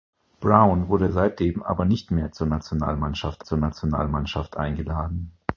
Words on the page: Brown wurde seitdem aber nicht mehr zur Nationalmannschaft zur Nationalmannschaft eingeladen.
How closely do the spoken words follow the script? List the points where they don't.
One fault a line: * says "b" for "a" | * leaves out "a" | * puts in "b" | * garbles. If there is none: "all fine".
all fine